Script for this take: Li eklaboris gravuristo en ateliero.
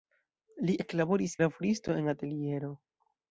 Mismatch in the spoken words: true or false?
false